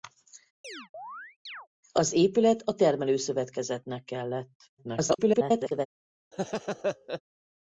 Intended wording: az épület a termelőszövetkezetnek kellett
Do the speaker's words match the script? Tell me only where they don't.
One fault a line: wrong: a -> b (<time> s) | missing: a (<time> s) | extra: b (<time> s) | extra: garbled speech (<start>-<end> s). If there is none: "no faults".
extra: garbled speech (4.8-5.9 s)